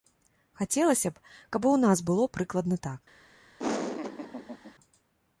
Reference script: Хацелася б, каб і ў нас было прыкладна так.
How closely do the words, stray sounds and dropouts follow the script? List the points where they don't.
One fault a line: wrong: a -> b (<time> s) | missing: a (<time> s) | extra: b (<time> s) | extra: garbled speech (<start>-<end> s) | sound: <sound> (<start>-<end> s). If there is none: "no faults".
sound: laugh (3.6-4.7 s)